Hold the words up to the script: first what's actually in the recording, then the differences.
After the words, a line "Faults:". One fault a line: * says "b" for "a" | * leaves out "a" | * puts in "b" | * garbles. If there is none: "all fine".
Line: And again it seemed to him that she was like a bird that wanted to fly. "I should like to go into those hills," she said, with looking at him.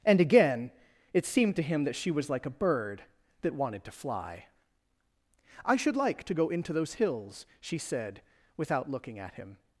And again it seemed to him that she was like a bird that wanted to fly. "I should like to go into those hills," she said, without looking at him.
Faults:
* says "without" for "with"